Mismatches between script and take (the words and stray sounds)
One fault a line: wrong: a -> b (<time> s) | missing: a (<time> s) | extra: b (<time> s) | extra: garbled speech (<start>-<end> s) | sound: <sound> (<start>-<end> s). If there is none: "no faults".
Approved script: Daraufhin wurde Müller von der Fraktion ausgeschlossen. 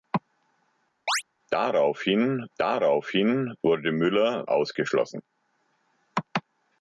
sound: chirp (1.1-1.2 s)
extra: daraufhin (2.6 s)
missing: von der Fraktion (4.4 s)